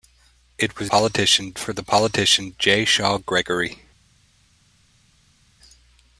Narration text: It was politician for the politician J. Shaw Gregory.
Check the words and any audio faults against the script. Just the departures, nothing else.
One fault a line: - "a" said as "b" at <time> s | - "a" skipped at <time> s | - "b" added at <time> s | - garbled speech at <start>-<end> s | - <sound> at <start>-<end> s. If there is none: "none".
none